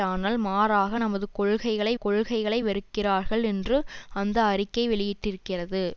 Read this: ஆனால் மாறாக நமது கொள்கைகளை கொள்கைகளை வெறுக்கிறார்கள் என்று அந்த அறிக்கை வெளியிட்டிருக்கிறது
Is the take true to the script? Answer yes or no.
yes